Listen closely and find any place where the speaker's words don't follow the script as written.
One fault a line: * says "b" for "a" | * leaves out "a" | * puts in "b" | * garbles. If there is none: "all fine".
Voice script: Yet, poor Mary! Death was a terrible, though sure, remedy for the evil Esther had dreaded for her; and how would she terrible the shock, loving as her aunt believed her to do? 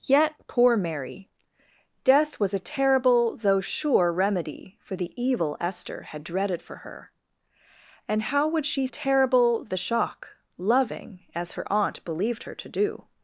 all fine